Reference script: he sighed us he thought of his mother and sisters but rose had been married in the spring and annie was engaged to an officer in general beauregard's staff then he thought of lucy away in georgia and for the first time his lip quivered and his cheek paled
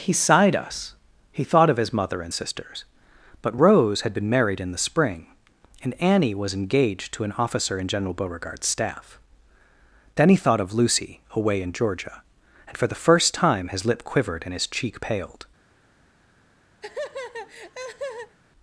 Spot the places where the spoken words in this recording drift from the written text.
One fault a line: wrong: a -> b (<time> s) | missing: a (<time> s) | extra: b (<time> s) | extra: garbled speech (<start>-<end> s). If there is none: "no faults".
no faults